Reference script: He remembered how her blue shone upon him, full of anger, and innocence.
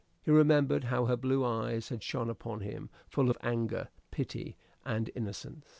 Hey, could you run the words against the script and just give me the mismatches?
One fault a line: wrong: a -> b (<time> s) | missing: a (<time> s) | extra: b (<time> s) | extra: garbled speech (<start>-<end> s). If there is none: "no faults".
extra: eyes had (1.4 s)
extra: pity (4.1 s)